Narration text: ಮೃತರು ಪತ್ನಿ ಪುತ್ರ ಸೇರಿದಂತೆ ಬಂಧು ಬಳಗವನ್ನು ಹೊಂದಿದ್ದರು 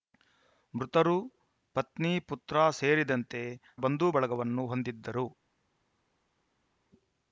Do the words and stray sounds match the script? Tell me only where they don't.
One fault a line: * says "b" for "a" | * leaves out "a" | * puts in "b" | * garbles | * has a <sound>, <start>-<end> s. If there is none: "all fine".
all fine